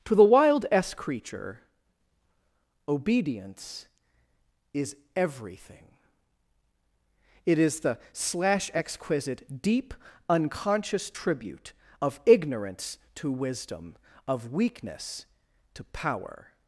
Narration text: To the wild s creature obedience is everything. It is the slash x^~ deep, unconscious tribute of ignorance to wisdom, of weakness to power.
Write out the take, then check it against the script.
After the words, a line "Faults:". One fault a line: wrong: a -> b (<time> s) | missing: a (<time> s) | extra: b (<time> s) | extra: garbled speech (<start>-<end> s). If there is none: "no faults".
To the wild s creature obedience is everything. It is the slash exquisite^~ deep, unconscious tribute of ignorance to wisdom, of weakness to power.
Faults:
wrong: x -> exquisite (8.7 s)